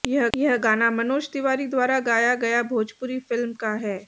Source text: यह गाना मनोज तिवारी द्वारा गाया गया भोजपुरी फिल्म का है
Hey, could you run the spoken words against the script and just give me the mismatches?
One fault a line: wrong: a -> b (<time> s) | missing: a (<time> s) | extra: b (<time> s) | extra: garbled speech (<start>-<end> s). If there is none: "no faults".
extra: यह (0.3 s)